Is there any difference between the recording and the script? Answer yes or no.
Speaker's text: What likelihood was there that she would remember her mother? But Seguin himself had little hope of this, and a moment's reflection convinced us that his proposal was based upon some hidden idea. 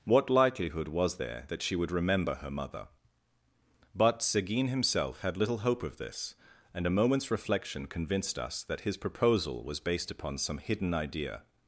no